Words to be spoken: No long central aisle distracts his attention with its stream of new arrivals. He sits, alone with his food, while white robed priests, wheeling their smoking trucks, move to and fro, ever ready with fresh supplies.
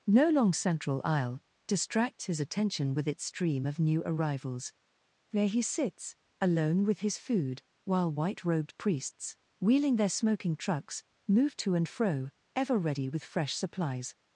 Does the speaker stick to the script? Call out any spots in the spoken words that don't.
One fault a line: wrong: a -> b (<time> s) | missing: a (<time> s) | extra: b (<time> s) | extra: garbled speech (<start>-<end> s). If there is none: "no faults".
extra: There (5.3 s)